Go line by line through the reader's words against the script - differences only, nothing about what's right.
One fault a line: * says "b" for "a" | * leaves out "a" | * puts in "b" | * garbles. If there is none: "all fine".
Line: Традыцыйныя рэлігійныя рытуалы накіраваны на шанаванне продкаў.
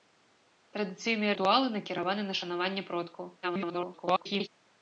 * leaves out "рэлігійныя"
* garbles